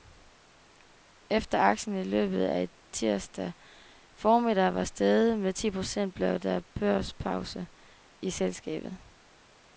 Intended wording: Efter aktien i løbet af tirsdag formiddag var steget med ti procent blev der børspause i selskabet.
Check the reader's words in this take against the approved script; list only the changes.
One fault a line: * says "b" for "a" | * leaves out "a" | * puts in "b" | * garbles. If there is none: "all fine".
all fine